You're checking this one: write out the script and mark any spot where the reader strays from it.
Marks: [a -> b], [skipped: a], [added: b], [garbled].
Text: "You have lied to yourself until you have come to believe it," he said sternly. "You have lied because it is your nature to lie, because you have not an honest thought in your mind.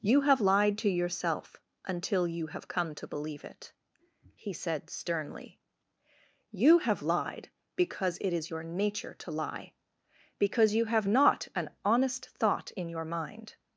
"You have lied to yourself until you have come to believe it," he said sternly. "You have lied because it is your nature to lie, because you have not an honest thought in your mind.